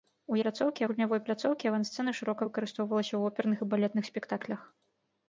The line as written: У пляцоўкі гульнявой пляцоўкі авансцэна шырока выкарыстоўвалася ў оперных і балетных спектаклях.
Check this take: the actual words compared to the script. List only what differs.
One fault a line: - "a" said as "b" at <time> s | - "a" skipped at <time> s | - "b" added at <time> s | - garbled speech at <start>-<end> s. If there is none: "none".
none